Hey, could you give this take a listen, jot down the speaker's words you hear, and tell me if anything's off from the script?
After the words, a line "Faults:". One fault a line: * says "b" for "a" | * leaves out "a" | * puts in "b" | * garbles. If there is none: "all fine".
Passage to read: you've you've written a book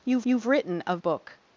you've you've written a book
Faults:
all fine